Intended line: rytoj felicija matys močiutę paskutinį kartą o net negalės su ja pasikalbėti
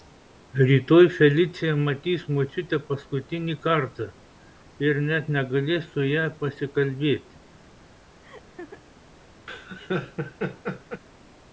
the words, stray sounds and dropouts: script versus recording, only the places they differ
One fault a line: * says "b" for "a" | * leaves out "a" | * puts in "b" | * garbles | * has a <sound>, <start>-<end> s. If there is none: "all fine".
* says "ir" for "o"
* has a laugh, 8.2-8.8 s
* has a laugh, 9.5-11.0 s